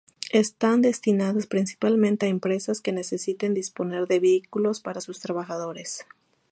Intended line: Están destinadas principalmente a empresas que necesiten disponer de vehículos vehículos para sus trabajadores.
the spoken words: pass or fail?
fail